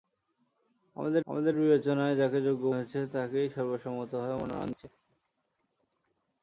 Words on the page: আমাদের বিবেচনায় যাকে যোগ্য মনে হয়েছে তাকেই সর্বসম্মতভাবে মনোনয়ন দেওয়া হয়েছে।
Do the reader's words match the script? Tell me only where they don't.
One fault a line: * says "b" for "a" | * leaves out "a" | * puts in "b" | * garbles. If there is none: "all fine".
* puts in "আমাদের"
* leaves out "মনে"
* leaves out "দেওয়া"